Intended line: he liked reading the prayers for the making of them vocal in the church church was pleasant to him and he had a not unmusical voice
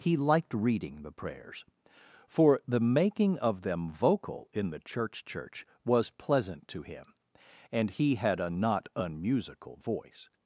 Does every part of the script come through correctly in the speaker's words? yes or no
yes